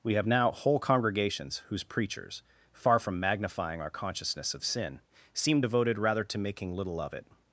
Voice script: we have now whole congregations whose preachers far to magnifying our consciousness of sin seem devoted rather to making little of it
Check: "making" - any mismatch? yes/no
no